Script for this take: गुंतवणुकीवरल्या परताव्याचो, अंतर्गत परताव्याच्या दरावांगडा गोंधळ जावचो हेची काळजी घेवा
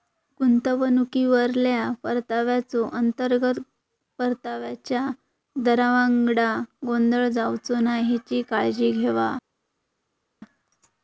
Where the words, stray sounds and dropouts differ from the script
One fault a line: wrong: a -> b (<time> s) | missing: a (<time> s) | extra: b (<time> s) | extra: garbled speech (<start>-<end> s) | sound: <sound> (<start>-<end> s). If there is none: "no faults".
extra: नाय (7.8 s)